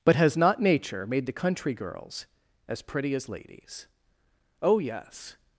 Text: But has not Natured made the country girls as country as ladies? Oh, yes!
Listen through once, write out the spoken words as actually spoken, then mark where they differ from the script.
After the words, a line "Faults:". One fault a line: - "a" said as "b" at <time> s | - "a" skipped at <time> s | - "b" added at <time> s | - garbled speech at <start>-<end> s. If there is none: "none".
But has not Nature made the country girls as pretty as ladies? Oh, yes!
Faults:
- "Natured" said as "Nature" at 0.6 s
- "country" said as "pretty" at 2.8 s